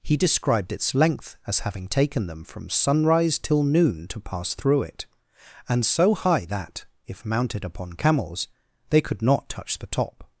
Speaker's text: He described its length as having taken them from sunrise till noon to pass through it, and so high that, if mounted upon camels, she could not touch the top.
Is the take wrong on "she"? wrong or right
wrong